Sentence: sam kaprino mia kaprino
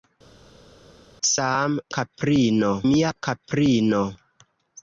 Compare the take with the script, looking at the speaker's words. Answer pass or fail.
pass